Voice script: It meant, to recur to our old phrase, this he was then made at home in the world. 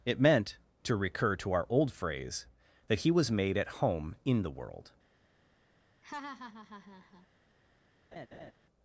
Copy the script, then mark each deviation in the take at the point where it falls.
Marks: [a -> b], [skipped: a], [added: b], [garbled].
It meant, to recur to our old phrase, [this -> that] he was [skipped: then] made at home in the world.